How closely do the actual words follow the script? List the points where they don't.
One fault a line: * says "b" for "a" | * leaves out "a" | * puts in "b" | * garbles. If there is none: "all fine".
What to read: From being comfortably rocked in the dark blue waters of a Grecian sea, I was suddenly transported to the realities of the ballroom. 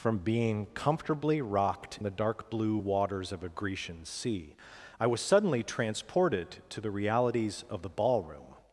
* leaves out "in"